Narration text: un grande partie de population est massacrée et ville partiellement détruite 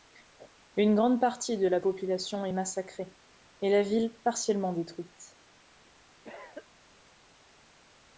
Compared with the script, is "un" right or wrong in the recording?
wrong